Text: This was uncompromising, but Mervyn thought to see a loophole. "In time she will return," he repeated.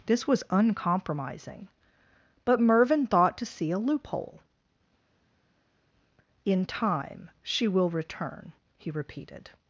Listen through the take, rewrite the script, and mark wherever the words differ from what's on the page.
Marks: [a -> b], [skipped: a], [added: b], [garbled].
This was uncompromising, but Mervyn thought to see a loophole. "In time she will return," he repeated.